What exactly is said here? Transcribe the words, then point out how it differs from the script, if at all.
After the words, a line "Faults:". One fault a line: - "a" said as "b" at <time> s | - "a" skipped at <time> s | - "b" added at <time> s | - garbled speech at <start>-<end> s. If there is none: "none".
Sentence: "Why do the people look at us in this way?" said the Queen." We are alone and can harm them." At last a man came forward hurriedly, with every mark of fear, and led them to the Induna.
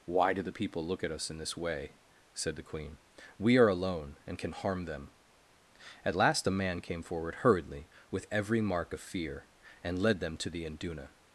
"Why do the people look at us in this way?" said the Queen." We are alone and can harm them." At last a man came forward hurriedly, with every mark of fear, and led them to the Induna.
Faults:
none